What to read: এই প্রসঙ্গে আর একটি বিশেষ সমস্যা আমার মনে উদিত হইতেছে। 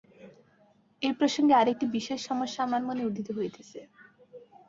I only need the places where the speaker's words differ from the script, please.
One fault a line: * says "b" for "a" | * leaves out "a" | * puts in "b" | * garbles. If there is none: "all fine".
all fine